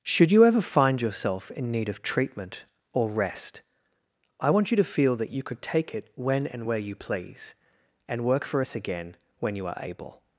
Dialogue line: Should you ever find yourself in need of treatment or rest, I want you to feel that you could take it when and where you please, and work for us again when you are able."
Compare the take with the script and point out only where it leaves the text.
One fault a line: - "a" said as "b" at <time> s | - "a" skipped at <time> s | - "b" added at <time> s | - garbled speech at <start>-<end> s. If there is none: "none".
none